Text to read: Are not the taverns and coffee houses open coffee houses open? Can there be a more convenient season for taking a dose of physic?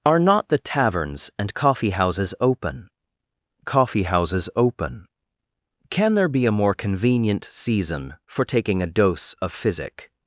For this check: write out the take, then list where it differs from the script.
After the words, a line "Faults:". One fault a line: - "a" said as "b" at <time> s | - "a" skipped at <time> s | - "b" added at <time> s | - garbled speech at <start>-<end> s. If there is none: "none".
Are not the taverns and coffee houses open coffee houses open? Can there be a more convenient season for taking a dose of physic?
Faults:
none